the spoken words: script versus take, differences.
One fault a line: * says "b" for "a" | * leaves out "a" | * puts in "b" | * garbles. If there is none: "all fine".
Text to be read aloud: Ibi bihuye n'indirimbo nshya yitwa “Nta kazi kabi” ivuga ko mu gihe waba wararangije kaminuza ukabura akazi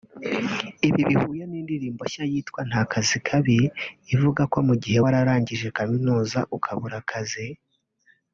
* leaves out "waba"